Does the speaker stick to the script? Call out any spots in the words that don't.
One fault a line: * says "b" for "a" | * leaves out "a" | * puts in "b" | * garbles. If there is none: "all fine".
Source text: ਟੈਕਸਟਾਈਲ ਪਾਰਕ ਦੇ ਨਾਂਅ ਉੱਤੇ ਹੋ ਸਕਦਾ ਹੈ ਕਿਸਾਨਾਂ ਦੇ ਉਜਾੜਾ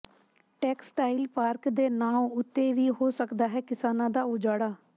* puts in "ਵੀ"
* says "ਦਾ" for "ਦੇ"